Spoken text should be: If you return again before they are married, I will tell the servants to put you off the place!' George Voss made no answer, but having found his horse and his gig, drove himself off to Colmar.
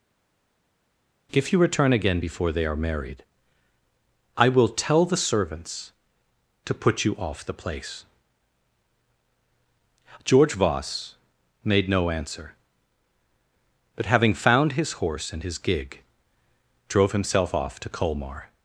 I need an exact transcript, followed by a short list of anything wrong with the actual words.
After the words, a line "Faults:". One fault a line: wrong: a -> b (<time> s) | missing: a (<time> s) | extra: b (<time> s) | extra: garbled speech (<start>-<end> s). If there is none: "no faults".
If you return again before they are married, I will tell the servants to put you off the place!' George Voss made no answer, but having found his horse and his gig, drove himself off to Colmar.
Faults:
no faults